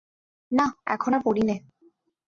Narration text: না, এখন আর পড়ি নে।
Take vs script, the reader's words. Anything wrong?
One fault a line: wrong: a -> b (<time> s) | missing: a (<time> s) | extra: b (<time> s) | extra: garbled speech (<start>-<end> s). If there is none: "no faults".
no faults